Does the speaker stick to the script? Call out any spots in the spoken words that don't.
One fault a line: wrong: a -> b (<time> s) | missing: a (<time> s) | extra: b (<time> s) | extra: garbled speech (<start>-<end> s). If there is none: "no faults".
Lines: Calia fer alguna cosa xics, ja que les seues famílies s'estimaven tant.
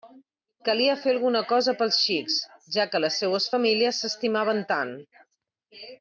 extra: pels (1.8 s)